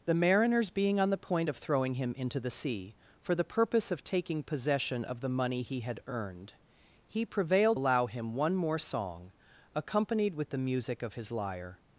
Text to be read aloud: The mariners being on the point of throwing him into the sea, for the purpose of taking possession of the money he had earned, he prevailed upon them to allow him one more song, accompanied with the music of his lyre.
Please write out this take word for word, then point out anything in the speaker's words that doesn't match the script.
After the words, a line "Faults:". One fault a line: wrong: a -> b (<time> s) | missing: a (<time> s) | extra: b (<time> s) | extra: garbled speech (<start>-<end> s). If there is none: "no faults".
The mariners being on the point of throwing him into the sea, for the purpose of taking possession of the money he had earned, he prevailed allow him one more song, accompanied with the music of his lyre.
Faults:
missing: upon them to (7.8 s)